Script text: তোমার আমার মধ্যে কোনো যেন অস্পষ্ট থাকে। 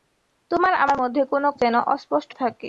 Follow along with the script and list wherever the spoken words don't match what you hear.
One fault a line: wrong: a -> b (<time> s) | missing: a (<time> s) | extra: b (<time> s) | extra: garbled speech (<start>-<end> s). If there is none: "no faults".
no faults